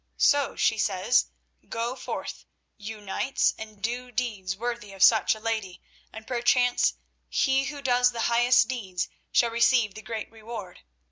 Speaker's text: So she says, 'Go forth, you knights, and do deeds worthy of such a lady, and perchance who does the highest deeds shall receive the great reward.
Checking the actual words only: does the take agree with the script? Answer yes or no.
no